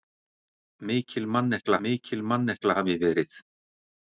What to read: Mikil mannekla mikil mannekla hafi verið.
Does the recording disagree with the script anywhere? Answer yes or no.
no